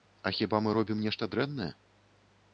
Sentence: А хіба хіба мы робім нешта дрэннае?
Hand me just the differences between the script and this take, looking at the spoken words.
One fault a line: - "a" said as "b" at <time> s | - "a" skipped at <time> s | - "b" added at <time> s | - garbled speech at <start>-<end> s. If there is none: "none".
- "хіба" skipped at 0.6 s